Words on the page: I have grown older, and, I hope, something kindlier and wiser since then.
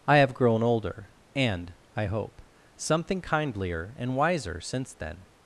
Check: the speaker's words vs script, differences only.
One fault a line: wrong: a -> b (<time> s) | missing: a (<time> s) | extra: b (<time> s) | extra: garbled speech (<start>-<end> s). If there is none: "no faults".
no faults